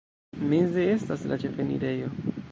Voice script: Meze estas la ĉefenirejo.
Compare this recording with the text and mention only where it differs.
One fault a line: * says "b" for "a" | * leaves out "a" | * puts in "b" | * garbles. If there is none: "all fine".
all fine